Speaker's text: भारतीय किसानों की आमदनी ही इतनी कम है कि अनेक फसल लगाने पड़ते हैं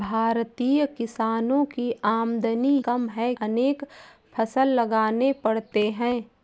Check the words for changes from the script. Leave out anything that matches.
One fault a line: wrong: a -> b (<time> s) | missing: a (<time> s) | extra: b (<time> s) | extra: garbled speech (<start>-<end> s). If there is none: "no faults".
missing: ही इतनी (2.8 s)
missing: कि (3.3 s)